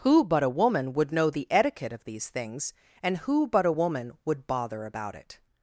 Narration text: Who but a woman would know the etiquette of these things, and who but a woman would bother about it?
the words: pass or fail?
pass